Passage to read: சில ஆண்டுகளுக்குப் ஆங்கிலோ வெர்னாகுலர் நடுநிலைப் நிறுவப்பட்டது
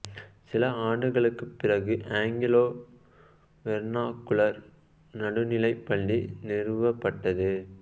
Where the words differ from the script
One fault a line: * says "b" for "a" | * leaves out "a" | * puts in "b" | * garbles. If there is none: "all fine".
* puts in "பிறகு"
* puts in "பள்ளி"